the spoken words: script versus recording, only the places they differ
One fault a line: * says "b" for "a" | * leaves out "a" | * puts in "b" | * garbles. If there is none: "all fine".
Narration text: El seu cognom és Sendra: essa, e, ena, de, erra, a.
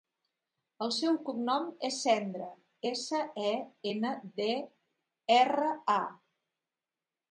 all fine